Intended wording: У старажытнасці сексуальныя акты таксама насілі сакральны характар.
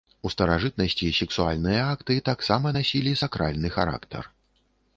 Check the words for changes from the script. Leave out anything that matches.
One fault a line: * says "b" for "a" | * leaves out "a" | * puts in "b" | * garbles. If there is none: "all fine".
all fine